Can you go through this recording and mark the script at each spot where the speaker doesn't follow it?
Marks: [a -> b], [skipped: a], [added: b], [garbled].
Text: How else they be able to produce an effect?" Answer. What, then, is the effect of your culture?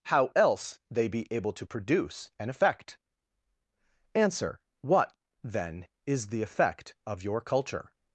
How else they be able to produce an effect?" Answer. What, then, is the effect of your culture?